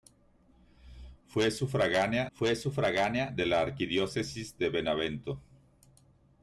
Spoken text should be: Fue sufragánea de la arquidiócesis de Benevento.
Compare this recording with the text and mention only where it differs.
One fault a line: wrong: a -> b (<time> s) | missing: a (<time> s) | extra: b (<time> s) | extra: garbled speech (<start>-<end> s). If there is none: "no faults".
extra: fue sufragánea (2.3 s)